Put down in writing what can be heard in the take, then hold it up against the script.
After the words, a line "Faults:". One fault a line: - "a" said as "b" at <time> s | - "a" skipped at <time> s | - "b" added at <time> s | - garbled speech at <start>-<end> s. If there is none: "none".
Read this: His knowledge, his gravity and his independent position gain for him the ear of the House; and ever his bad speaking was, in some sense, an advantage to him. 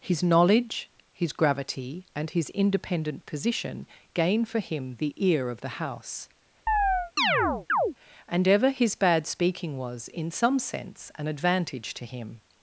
His knowledge, his gravity and his independent position gain for him the ear of the House; and ever his bad speaking was, in some sense, an advantage to him.
Faults:
none